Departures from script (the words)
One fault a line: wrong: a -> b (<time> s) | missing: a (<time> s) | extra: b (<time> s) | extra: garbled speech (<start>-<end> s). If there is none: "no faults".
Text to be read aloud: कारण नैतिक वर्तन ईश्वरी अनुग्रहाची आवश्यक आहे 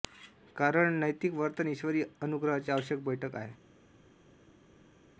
extra: बैठक (3.0 s)